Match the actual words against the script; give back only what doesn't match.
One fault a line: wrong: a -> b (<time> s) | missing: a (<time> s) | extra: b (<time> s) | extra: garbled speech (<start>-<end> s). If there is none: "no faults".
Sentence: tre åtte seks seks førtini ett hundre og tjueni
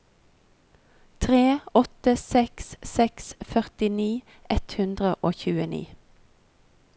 no faults